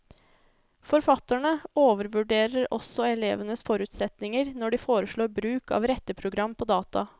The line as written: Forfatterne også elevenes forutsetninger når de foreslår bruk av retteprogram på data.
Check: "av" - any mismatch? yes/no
no